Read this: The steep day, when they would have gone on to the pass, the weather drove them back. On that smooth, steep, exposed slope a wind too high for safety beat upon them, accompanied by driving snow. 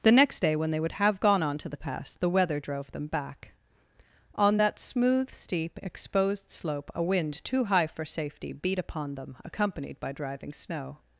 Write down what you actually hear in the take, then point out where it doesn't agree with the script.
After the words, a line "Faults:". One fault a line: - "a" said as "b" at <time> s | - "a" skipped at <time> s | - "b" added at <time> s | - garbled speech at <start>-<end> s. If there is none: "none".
The next day, when they would have gone on to the pass, the weather drove them back. On that smooth, steep, exposed slope a wind too high for safety beat upon them, accompanied by driving snow.
Faults:
- "steep" said as "next" at 0.1 s